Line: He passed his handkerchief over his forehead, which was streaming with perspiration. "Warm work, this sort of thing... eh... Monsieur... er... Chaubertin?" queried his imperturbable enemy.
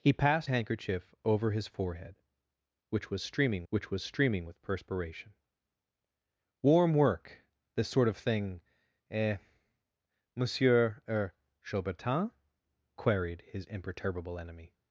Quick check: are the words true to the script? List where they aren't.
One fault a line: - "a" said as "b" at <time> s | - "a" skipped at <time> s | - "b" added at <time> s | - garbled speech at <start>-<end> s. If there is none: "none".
- "his" skipped at 0.5 s
- "which was streaming" added at 3.7 s